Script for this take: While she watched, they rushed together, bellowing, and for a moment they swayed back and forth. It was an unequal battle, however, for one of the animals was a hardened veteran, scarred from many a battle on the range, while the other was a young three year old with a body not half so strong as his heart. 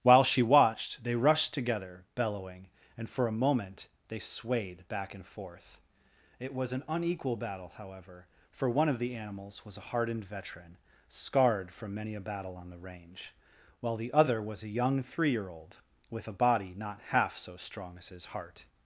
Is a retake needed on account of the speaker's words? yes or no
no